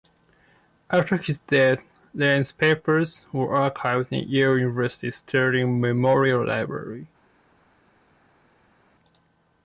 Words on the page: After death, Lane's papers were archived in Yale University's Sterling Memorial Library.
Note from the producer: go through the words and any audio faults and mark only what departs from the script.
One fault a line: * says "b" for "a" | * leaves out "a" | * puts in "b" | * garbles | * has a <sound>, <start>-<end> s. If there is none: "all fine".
* puts in "his"